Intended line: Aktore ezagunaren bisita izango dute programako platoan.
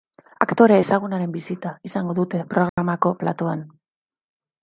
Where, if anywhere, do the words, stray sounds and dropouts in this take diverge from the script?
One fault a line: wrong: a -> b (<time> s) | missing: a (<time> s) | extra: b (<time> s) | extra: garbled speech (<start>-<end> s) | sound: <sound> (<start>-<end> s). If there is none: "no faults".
sound: dropout (2.7-2.8 s)